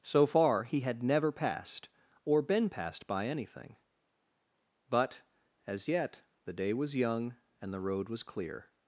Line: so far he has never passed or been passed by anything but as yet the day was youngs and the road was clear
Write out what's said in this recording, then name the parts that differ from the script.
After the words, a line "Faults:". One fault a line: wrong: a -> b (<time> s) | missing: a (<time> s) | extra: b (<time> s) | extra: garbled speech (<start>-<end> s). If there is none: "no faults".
so far he had never passed or been passed by anything but as yet the day was young and the road was clear
Faults:
wrong: has -> had (0.8 s)
wrong: youngs -> young (7.0 s)